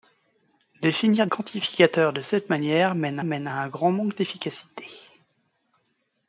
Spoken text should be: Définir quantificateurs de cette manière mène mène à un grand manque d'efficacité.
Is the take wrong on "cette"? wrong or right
right